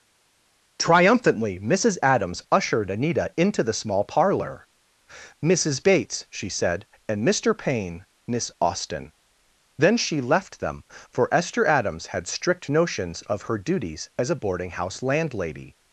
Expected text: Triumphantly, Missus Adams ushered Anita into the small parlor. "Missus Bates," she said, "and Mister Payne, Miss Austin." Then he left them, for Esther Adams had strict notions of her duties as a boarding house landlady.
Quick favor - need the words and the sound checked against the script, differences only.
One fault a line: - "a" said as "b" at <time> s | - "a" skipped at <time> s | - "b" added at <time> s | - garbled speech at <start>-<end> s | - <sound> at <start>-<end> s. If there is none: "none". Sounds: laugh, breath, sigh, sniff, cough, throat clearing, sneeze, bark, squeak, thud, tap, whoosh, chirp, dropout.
- "he" said as "she" at 10.0 s